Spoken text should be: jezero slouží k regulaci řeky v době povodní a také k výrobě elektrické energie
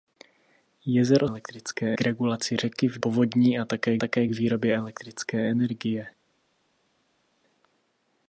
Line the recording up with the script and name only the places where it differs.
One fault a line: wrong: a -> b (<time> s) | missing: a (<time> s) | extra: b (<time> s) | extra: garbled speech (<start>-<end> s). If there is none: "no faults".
wrong: slouží -> elektrické (1.2 s)
missing: době (3.0 s)
extra: také (4.0 s)